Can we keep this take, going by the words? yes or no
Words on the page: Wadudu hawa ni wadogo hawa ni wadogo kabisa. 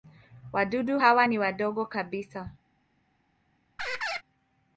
no